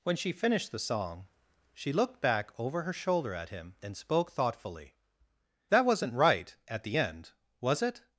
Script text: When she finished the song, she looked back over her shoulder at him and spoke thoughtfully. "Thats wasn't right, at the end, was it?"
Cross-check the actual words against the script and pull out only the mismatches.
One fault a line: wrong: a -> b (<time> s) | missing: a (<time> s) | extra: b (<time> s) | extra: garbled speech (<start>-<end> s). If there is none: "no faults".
wrong: Thats -> That (5.7 s)